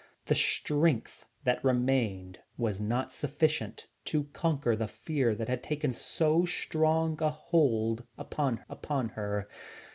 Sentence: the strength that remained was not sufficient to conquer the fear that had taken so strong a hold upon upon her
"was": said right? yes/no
yes